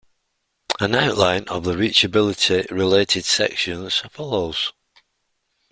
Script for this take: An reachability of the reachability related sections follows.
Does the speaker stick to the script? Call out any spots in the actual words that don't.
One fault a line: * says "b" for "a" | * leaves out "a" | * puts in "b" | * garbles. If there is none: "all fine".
* says "outline" for "reachability"